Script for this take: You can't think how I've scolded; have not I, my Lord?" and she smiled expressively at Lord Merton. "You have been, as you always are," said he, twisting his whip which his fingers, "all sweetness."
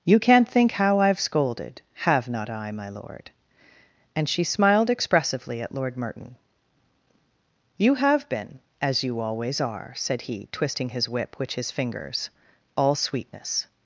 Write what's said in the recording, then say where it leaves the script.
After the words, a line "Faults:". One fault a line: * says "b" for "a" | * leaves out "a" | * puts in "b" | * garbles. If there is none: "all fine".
You can't think how I've scolded; have not I, my Lord?" and she smiled expressively at Lord Merton. "You have been, as you always are," said he, twisting his whip which his fingers, "all sweetness."
Faults:
all fine